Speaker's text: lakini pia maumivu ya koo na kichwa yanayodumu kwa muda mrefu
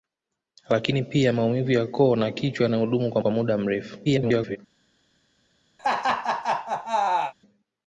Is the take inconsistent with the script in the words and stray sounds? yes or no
yes